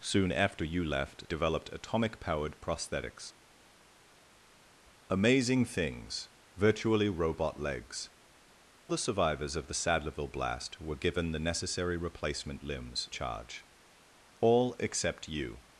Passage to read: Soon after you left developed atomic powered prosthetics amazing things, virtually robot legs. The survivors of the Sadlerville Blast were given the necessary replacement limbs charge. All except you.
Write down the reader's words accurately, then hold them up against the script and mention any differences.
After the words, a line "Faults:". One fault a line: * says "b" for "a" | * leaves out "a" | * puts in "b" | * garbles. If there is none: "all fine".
Soon after you left developed atomic powered prosthetics amazing things, virtually robot legs. The survivors of the Sadlerville Blast were given the necessary replacement limbs charge. All except you.
Faults:
all fine